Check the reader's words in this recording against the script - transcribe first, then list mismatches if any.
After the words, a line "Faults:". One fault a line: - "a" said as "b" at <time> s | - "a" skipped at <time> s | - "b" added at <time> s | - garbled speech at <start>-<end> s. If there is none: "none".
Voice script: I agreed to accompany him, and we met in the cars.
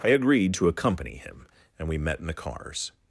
I agreed to accompany him, and we met in the cars.
Faults:
none